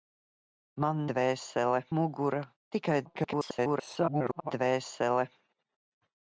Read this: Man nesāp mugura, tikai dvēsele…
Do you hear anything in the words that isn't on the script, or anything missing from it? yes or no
yes